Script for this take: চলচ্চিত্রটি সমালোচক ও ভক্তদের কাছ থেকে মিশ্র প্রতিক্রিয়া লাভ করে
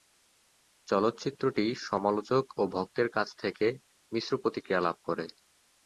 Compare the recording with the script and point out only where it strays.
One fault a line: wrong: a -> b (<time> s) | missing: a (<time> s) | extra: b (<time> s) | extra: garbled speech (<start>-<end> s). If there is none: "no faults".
no faults